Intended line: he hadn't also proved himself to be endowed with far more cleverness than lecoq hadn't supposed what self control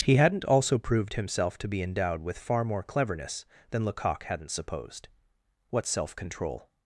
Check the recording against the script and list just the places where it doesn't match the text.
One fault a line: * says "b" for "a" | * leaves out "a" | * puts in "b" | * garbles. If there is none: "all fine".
all fine